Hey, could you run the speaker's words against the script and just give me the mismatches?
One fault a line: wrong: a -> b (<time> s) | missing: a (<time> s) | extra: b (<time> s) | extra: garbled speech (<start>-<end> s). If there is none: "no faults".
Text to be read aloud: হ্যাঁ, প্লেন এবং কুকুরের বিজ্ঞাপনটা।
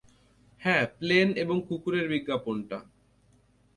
no faults